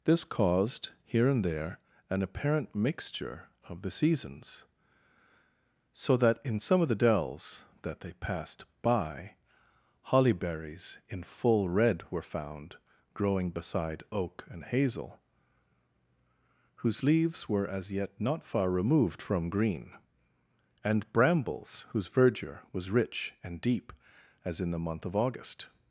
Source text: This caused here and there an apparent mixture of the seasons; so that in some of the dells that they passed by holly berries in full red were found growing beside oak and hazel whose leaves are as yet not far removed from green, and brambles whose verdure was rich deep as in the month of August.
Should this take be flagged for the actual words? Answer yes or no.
yes